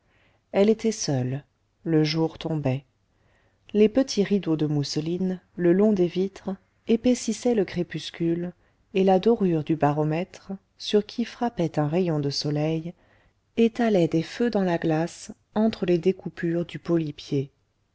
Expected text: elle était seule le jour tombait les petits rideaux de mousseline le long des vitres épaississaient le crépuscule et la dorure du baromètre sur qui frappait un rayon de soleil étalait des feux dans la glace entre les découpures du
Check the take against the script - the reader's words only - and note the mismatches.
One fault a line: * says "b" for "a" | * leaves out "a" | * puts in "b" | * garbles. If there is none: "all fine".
all fine